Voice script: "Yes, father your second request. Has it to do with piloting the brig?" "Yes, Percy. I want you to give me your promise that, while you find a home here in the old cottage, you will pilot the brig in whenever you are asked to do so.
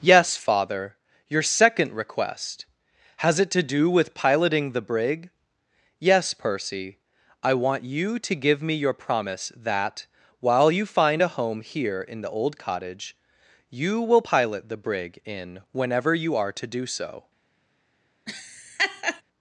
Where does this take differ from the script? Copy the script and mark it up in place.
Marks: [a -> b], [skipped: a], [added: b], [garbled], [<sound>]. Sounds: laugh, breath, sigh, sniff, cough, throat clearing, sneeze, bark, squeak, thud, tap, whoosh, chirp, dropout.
"Yes, father your second request. Has it to do with piloting the brig?" "Yes, Percy. I want you to give me your promise that, while you find a home here in the old cottage, you will pilot the brig in whenever you are [skipped: asked] to do so. [laugh]